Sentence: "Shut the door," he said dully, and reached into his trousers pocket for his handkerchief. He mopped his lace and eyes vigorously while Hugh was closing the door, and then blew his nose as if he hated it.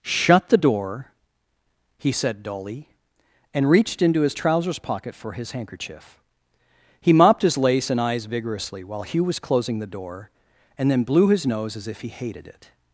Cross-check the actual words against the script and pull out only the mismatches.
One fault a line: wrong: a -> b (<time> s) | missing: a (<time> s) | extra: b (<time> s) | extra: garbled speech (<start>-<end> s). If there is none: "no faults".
no faults